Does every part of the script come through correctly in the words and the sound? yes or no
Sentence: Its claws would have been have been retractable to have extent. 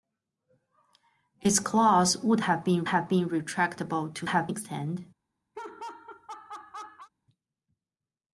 no